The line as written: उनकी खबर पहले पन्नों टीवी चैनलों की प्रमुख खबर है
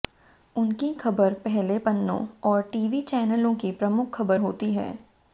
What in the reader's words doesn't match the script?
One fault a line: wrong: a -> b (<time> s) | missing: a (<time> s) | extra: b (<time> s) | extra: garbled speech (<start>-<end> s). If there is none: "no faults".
extra: और (2.5 s)
extra: होती (4.4 s)